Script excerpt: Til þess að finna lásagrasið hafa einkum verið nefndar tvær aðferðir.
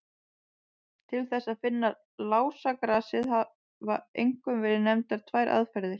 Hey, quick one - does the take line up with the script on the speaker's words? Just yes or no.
yes